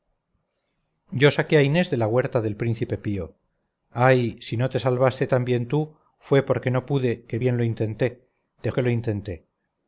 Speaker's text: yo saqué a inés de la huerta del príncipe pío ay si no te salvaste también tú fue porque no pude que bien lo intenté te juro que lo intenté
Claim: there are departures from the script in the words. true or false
true